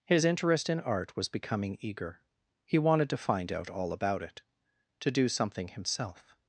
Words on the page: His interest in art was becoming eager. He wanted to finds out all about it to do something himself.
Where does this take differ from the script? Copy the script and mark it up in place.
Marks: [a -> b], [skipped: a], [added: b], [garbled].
His interest in art was becoming eager. He wanted to [finds -> find] out all about it to do something himself.